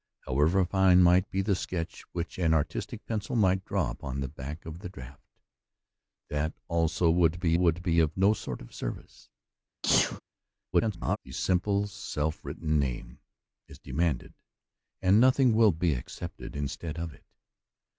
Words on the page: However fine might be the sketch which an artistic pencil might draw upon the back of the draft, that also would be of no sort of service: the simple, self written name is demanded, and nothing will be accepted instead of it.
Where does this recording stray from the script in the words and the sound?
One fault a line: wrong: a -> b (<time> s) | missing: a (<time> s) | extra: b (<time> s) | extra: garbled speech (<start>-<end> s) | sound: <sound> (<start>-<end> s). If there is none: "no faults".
extra: would be (7.5 s)
sound: sneeze (9.8-10.2 s)
extra: garbled speech (10.7-11.2 s)